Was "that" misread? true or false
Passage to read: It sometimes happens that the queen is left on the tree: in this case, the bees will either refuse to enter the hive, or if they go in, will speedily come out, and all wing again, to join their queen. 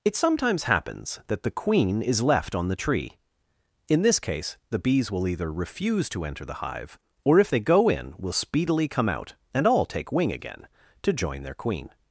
false